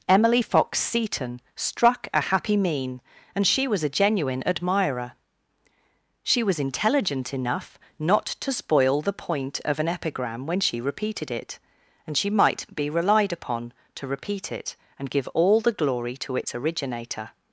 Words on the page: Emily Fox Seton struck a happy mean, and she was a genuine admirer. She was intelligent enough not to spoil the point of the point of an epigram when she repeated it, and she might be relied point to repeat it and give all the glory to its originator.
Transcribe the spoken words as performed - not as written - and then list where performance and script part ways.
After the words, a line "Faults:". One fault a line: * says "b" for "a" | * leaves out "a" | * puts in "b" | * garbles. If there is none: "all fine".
Emily Fox Seton struck a happy mean, and she was a genuine admirer. She was intelligent enough not to spoil the point of an epigram when she repeated it, and she might be relied upon to repeat it and give all the glory to its originator.
Faults:
* leaves out "the point of"
* says "upon" for "point"